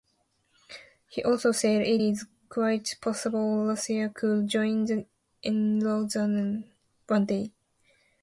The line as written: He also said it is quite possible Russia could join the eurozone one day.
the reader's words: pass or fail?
pass